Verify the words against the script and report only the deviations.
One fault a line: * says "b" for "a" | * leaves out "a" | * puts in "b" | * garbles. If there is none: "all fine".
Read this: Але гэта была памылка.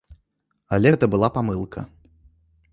all fine